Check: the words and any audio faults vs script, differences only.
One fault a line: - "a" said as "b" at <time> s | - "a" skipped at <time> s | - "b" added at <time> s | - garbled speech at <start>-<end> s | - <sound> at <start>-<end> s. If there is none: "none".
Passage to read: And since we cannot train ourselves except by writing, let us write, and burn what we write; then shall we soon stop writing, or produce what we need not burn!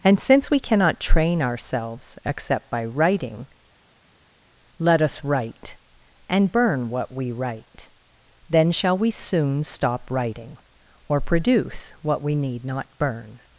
none